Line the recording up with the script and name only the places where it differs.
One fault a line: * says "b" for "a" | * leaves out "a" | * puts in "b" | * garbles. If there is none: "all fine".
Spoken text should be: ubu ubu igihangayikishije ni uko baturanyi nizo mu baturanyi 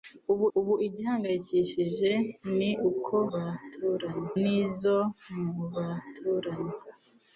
all fine